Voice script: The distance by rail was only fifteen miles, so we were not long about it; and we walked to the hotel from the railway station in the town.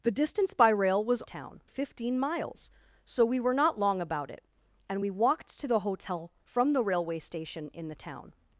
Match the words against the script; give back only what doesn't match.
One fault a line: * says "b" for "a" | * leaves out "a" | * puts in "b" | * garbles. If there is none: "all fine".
* says "town" for "only"